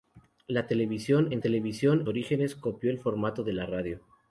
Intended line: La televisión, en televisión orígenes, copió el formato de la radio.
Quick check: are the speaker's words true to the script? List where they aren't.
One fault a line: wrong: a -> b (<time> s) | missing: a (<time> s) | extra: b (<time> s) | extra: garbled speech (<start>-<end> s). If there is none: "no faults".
no faults